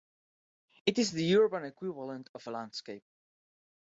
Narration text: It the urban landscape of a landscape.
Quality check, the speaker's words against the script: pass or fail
fail